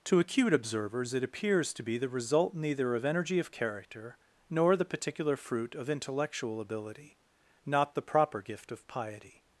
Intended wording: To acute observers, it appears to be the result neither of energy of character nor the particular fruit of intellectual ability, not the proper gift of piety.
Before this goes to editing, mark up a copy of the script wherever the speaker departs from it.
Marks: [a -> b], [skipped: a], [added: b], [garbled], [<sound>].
To acute observers, it appears to be the result neither of energy of character nor the particular fruit of intellectual ability, not the proper gift of piety.